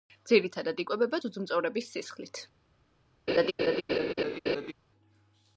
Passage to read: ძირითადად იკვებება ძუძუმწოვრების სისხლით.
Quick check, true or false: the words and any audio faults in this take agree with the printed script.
false